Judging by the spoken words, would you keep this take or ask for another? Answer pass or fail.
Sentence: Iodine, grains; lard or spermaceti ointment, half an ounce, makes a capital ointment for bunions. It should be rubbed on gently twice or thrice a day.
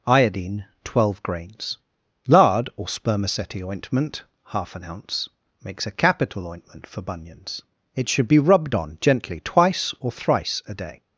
fail